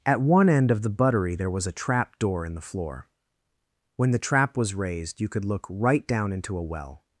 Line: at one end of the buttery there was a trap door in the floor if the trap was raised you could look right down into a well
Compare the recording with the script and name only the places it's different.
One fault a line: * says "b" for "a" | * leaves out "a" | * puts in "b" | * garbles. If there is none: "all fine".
* says "when" for "if"